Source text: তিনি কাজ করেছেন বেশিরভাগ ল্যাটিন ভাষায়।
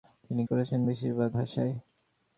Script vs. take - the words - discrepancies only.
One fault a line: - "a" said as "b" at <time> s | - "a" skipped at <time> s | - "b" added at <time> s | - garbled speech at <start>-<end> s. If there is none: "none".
- "কাজ" skipped at 0.4 s
- "ল্যাটিন" skipped at 1.3 s